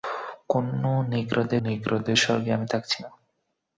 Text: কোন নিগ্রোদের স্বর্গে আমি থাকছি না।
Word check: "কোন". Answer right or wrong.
right